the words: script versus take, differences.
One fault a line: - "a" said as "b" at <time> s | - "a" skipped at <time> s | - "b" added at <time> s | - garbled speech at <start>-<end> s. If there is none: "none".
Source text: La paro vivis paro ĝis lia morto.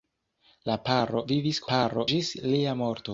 none